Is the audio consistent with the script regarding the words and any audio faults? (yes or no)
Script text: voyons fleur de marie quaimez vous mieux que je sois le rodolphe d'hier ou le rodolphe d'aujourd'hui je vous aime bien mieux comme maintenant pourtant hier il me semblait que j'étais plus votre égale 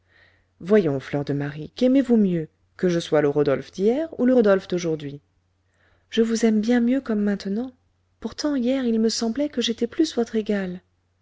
yes